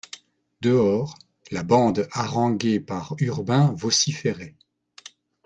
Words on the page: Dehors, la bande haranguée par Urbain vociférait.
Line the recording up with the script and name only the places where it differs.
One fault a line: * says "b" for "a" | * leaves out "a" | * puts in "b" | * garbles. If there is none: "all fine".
all fine